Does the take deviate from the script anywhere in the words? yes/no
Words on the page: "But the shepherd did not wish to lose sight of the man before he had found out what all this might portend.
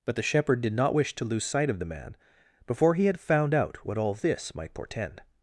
no